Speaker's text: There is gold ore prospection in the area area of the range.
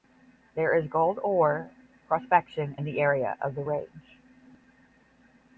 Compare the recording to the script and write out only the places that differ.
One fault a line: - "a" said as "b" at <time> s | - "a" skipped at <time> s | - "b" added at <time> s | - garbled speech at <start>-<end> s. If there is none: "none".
- "area" skipped at 3.4 s